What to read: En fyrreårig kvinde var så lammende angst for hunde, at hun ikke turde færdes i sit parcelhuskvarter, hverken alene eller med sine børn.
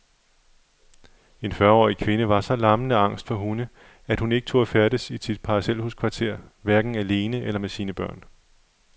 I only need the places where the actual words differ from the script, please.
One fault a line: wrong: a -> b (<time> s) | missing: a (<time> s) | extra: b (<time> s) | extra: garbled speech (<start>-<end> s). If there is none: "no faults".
no faults